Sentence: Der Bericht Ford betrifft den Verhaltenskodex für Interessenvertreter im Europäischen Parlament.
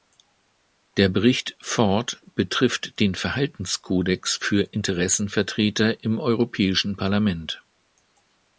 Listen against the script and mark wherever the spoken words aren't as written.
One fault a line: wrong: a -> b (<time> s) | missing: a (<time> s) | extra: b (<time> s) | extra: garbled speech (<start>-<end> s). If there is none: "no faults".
no faults